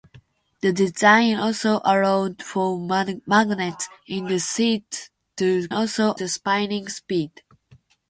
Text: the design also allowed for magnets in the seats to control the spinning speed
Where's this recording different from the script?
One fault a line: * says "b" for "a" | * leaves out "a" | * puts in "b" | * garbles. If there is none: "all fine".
* says "also" for "control"